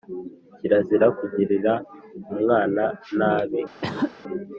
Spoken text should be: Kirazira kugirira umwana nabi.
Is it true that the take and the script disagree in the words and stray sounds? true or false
true